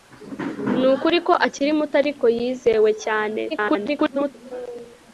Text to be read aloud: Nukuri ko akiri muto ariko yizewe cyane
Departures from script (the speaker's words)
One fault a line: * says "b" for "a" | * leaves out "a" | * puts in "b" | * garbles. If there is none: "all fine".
* garbles